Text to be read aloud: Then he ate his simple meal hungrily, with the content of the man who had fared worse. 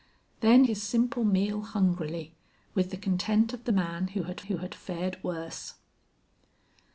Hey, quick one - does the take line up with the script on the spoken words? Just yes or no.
no